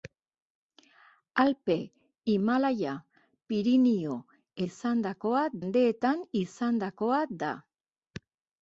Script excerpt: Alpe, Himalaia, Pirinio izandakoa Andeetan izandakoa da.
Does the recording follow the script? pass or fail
pass